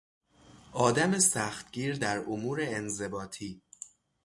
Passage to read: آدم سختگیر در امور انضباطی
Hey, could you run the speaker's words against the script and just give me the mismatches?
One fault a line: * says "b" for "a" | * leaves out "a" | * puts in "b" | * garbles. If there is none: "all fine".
all fine